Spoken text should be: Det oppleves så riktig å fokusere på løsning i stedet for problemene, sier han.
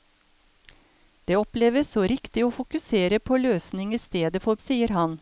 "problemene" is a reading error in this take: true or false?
true